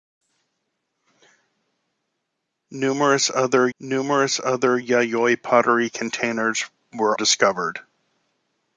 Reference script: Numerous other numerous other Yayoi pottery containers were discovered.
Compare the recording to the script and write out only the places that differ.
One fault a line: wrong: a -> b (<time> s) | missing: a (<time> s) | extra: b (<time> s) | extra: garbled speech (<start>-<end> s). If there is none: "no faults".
no faults